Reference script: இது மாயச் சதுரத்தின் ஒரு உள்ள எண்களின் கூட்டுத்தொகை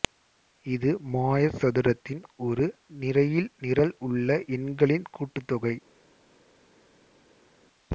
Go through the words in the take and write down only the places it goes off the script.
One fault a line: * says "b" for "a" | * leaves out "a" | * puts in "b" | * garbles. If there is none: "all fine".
* puts in "நிரையில் நிரல்"